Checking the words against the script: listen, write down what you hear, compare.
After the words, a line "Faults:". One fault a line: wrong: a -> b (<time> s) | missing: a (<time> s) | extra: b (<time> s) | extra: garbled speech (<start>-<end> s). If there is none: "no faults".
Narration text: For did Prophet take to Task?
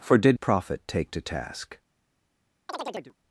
For did Prophet take to Task?
Faults:
no faults